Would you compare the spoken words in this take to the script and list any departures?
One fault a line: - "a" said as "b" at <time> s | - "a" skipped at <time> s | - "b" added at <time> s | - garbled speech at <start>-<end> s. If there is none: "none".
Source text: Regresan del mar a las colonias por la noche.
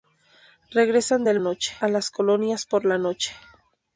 - "mar" said as "noche" at 1.4 s